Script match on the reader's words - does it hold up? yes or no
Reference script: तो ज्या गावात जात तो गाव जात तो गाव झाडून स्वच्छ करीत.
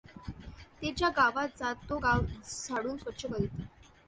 no